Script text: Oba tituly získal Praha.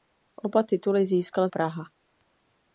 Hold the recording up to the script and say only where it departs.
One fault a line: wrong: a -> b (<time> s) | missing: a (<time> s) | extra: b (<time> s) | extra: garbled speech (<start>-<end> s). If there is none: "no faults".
no faults